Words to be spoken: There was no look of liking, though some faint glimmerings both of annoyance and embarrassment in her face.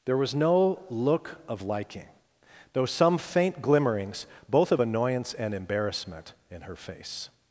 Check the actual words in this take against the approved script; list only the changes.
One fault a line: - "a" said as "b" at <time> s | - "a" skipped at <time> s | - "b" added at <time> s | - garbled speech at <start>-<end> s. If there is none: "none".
none